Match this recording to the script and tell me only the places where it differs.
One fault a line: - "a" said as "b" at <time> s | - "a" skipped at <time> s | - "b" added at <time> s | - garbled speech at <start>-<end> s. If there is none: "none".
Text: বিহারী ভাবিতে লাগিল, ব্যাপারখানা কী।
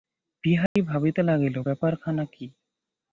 none